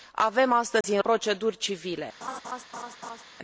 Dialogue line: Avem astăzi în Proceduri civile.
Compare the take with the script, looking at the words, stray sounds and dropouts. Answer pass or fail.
fail